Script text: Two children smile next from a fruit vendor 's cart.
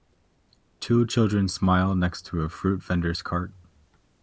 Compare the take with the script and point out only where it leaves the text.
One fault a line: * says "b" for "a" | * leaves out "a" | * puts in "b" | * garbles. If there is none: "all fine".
* says "to" for "from"